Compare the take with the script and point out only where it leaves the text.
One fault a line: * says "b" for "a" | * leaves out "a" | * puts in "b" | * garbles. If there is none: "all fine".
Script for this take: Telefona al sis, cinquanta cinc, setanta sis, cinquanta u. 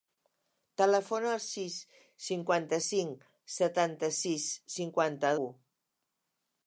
all fine